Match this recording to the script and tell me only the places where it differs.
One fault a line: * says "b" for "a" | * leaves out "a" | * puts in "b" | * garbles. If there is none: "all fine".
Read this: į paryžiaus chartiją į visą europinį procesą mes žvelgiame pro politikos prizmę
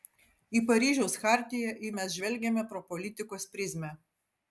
* leaves out "visą europinį procesą"